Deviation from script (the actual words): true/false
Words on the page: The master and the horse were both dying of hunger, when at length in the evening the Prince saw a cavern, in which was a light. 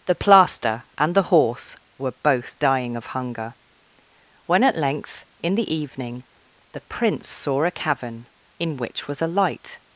true